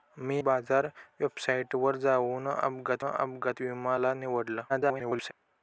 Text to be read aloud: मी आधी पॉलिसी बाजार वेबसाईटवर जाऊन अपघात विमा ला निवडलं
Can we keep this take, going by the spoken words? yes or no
no